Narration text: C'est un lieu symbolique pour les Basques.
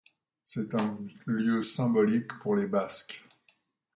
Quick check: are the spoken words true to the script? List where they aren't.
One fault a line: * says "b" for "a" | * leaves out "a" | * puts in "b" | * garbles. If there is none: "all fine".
all fine